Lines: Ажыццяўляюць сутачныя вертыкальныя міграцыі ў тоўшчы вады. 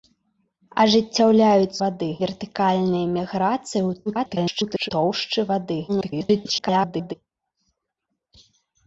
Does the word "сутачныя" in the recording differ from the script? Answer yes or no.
yes